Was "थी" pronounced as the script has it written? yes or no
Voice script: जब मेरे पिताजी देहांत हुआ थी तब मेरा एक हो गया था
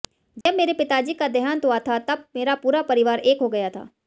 no